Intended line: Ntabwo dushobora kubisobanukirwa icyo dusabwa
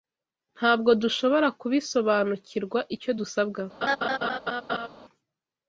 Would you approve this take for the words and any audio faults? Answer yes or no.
no